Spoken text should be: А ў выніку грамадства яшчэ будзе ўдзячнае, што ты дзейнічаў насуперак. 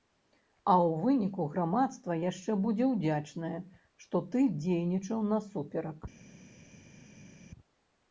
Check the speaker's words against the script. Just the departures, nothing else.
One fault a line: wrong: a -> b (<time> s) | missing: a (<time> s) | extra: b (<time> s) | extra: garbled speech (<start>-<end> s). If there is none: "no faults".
no faults